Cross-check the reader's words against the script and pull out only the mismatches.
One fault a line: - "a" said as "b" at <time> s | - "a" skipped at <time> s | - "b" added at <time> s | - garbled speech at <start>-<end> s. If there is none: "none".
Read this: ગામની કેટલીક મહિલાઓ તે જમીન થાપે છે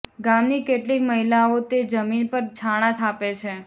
- "પર છાણાં" added at 2.3 s